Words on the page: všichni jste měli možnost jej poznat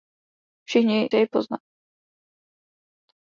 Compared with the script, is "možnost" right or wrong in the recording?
wrong